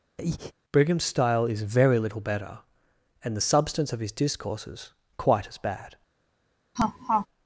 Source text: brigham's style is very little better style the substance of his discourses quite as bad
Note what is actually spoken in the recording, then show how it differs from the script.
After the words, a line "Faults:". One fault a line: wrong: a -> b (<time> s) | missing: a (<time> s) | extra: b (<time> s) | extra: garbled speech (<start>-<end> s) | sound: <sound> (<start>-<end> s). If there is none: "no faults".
brigham's style is very little better and the substance of his discourses quite as bad
Faults:
sound: breath (0.2-0.5 s)
wrong: style -> and (3.2 s)
sound: laugh (6.8-7.3 s)